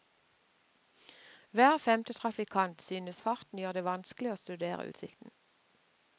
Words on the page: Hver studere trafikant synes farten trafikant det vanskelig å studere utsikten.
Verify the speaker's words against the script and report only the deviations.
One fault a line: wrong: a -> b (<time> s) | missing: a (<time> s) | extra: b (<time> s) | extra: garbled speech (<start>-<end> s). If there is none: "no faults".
wrong: studere -> femte (1.8 s)
wrong: trafikant -> gjør (3.6 s)